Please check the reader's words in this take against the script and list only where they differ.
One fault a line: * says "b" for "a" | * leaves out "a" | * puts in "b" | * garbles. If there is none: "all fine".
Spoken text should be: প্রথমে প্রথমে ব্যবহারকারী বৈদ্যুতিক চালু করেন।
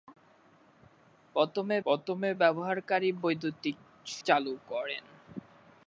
all fine